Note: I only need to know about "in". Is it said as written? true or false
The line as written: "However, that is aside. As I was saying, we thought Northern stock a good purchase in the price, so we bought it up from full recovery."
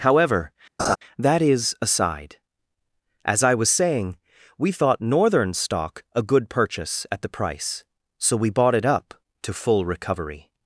false